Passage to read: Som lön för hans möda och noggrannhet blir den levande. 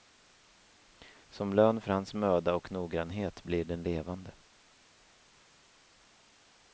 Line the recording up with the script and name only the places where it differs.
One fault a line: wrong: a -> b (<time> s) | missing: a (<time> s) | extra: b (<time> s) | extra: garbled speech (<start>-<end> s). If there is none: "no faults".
no faults